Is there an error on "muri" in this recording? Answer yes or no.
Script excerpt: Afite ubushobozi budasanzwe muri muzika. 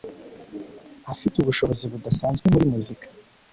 no